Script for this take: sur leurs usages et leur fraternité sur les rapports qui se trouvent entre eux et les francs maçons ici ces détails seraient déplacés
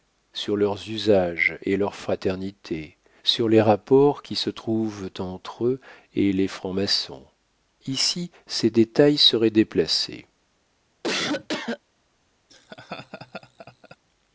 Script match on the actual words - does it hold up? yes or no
yes